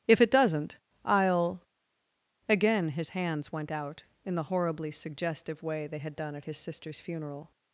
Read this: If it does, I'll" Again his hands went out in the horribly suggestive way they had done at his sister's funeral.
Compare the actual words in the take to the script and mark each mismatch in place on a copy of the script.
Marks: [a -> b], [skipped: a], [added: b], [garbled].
If it [does, -> doesn't] I'll" Again his hands went out in the horribly suggestive way they had done at his sister's funeral.